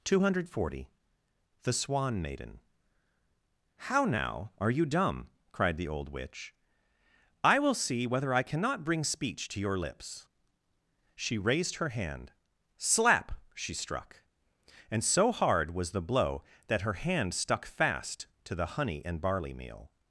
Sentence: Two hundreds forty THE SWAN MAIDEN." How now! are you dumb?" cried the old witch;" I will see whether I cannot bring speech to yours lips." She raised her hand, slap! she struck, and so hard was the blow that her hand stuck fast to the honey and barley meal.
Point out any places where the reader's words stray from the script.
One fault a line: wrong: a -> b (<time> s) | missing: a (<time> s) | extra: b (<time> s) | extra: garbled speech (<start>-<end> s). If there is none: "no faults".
wrong: hundreds -> hundred (0.2 s)
wrong: yours -> your (9.6 s)